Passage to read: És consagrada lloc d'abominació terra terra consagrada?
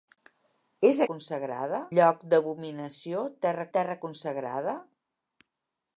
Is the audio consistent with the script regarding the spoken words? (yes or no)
yes